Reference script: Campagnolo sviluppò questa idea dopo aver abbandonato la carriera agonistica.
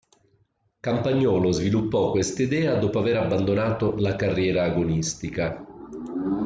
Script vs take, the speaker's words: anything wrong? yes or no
no